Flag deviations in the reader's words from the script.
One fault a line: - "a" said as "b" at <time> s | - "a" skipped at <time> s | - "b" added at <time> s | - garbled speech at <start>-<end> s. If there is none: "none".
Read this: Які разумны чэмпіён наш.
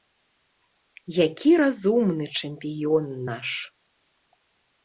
none